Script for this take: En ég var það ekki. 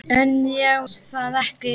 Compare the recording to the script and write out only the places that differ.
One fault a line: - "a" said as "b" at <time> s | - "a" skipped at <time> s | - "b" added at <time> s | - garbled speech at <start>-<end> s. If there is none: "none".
- "var" skipped at 0.8 s